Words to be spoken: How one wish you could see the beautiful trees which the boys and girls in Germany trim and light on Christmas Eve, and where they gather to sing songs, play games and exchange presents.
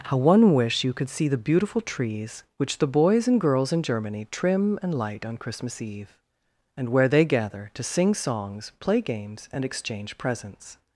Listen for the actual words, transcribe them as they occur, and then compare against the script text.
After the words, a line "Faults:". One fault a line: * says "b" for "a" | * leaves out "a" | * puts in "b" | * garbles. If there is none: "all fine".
How one wish you could see the beautiful trees which the boys and girls in Germany trim and light on Christmas Eve, and where they gather to sing songs, play games and exchange presents.
Faults:
all fine